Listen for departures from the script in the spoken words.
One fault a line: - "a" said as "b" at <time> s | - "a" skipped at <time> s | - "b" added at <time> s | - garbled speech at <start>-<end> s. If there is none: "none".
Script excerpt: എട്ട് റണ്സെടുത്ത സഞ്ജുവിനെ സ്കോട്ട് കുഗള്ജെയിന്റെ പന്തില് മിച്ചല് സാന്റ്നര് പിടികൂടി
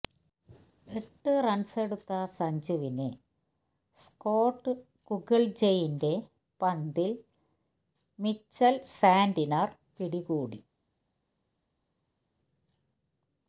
none